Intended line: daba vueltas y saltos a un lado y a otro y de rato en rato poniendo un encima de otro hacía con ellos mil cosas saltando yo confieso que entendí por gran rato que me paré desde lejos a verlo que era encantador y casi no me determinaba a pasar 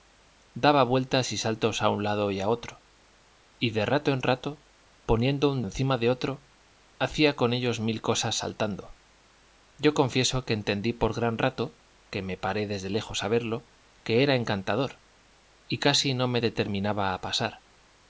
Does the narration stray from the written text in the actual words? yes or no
no